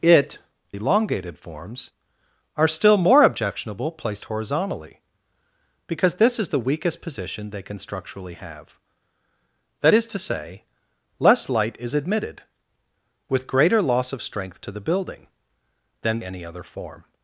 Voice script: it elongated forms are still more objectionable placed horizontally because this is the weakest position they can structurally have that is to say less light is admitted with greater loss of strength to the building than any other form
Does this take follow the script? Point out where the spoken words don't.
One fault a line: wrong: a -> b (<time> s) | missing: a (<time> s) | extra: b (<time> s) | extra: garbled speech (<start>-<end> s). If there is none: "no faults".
no faults